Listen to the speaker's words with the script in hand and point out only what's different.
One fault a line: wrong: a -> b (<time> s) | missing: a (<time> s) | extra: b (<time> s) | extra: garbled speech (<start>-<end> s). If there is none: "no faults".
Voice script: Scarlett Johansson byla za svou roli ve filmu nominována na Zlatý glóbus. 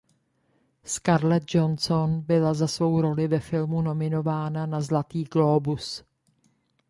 no faults